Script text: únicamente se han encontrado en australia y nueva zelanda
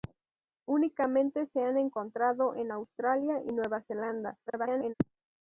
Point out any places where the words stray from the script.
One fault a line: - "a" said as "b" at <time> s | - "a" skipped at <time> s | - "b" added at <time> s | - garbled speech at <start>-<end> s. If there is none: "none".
- garbled speech at 4.5-4.9 s